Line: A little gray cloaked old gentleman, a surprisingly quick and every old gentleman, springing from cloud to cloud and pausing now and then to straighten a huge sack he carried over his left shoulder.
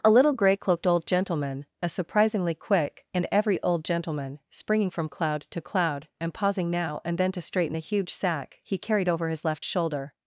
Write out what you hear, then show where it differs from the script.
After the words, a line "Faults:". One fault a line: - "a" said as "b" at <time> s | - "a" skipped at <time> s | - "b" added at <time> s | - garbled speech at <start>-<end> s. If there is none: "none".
A little gray cloaked old gentleman, a surprisingly quick and every old gentleman, springing from cloud to cloud and pausing now and then to straighten a huge sack he carried over his left shoulder.
Faults:
none